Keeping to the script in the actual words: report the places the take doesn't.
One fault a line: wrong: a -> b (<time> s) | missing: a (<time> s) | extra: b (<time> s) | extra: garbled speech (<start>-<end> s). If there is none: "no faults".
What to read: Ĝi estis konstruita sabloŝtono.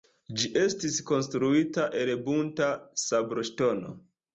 extra: el bunta (2.0 s)